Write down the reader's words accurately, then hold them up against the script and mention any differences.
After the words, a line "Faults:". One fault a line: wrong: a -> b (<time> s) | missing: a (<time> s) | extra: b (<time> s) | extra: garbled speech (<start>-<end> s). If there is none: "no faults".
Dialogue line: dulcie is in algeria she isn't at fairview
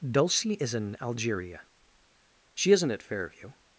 dulcie is in algeria she isn't at fairview
Faults:
no faults